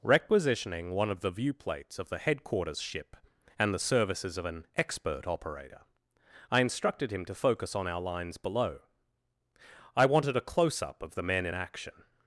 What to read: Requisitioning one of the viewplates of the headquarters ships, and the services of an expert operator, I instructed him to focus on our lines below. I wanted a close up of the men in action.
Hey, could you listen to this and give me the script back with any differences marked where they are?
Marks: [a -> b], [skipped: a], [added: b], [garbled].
Requisitioning one of the viewplates of the headquarters [ships, -> ship] and the services of an expert operator, I instructed him to focus on our lines below. I wanted a close up of the men in action.